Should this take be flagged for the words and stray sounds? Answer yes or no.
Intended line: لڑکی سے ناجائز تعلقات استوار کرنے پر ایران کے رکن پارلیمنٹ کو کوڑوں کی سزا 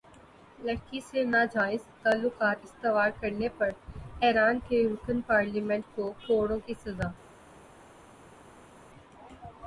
no